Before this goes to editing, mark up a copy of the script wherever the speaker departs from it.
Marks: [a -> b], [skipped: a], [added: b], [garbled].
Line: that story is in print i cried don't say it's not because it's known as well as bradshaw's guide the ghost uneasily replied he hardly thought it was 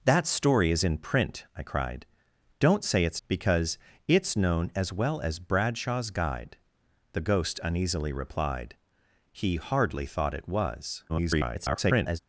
that story is in print i cried don't say it's [skipped: not] because it's known as well as bradshaw's guide the ghost uneasily replied he hardly thought it was [garbled]